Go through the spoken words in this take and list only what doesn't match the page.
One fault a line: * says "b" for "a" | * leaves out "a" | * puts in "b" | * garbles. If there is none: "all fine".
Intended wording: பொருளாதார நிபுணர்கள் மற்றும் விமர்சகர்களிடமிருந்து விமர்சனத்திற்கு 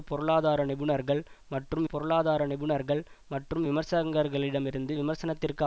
* puts in "பொருளாதார நிபுணர்கள் மற்றும்"